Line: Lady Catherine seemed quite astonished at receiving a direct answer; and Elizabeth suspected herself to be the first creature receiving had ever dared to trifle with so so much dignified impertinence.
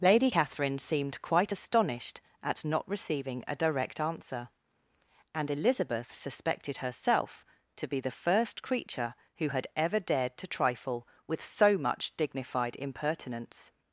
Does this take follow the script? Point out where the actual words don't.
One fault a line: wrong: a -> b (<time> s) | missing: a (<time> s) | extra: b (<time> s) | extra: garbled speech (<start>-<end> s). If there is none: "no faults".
extra: not (2.6 s)
wrong: receiving -> who (9.4 s)
missing: so (11.8 s)